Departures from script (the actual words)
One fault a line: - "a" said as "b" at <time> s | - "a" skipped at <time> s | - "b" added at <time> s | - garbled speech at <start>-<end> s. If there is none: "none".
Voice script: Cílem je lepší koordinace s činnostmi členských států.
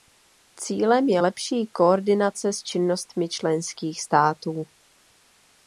none